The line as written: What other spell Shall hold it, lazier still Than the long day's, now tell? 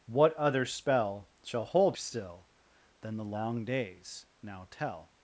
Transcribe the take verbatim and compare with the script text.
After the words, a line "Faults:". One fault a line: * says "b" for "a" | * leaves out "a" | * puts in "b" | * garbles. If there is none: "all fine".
What other spell Shall hold still Than the long day's, now tell?
Faults:
* leaves out "it lazier"